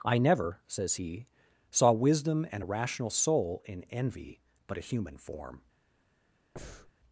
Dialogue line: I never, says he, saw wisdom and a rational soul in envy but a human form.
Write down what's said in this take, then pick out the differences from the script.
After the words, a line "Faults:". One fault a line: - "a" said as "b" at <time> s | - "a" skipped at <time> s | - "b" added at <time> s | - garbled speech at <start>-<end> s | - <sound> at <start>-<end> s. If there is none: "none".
I never, says he, saw wisdom and a rational soul in envy but a human form.
Faults:
- breath at 6.6-6.9 s